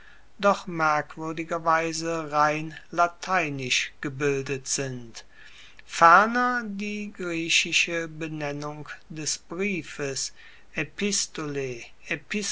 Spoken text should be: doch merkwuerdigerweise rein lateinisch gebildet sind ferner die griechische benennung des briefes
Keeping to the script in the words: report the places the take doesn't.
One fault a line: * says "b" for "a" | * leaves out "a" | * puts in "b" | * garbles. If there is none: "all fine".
all fine